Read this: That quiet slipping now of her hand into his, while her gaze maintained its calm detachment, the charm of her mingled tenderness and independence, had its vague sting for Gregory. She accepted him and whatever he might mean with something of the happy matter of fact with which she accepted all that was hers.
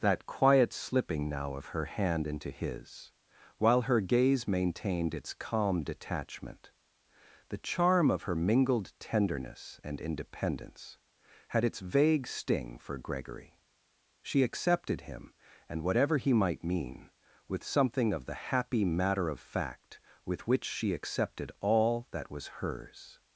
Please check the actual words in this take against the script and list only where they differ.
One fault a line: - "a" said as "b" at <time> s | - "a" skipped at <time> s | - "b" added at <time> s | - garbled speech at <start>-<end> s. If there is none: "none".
none